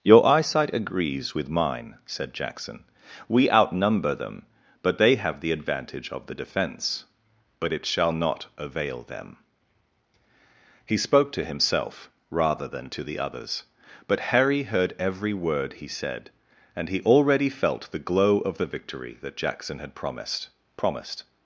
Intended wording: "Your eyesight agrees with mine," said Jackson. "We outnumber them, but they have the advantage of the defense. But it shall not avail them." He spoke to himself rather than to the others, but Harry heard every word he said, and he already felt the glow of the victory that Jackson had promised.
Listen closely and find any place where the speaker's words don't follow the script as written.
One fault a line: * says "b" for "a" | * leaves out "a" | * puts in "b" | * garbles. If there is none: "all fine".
* puts in "promised"